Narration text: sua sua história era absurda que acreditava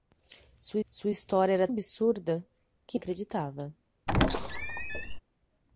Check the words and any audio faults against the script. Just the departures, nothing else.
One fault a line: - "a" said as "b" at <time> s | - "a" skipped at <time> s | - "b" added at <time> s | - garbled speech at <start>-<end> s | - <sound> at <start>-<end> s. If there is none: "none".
- squeak at 4.1-5.2 s